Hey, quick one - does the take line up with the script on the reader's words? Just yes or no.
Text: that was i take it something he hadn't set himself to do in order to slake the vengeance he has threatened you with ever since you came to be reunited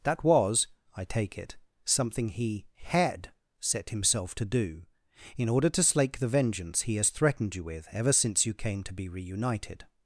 no